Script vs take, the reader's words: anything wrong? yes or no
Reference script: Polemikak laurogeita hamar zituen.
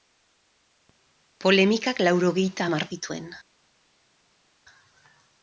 no